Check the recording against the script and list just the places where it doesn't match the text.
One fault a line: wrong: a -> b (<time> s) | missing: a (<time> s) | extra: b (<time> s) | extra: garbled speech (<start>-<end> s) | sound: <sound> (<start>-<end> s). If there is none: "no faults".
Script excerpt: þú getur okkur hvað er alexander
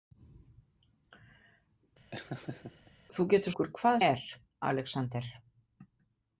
sound: laugh (2.1-2.9 s)